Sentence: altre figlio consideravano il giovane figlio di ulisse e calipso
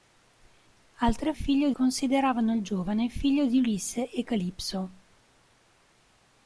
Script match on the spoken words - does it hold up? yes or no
yes